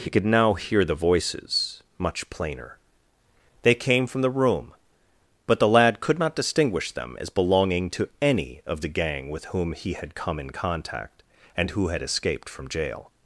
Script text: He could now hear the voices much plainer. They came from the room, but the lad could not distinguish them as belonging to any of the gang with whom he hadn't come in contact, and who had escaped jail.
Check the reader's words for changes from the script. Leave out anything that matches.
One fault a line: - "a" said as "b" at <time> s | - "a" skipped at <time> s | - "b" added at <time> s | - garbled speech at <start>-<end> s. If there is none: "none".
- "hadn't" said as "had" at 9.9 s
- "from" added at 12.5 s